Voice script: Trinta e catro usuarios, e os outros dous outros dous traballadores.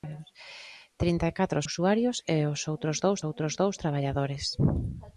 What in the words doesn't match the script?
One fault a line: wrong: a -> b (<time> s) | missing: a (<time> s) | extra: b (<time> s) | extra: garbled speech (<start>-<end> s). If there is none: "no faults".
no faults